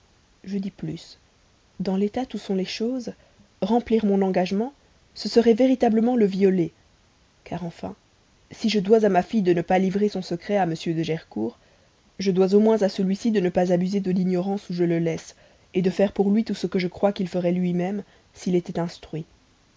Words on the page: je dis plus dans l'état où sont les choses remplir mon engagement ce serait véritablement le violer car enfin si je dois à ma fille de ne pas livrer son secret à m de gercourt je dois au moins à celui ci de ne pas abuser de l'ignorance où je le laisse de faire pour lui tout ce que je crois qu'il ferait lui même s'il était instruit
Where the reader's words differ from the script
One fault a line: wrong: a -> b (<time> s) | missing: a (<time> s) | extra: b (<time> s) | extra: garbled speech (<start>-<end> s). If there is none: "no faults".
no faults